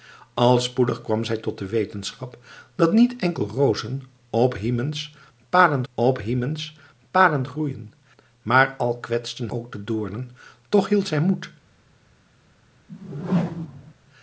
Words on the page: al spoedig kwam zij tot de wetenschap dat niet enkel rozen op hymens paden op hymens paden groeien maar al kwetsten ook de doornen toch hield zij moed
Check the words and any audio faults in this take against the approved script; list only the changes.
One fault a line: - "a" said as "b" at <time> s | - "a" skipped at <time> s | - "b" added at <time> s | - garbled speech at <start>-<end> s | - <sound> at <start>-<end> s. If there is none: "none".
- whoosh at 12.9-13.9 s